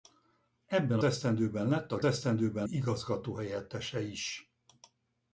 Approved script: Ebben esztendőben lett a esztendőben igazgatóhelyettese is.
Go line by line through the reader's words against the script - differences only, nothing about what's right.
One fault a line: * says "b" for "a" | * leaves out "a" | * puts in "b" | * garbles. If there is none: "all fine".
all fine